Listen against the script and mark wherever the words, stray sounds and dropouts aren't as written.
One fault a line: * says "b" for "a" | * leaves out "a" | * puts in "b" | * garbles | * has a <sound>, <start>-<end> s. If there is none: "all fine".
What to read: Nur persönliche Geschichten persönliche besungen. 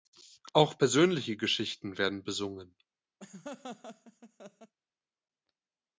* says "Auch" for "Nur"
* says "werden" for "persönliche"
* has a laugh, 3.2-4.7 s